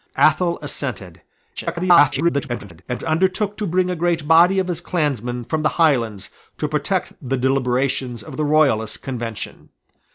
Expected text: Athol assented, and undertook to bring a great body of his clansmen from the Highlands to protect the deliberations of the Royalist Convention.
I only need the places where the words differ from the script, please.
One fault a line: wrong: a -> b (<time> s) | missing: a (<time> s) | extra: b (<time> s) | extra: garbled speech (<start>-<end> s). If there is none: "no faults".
extra: garbled speech (1.6-2.8 s)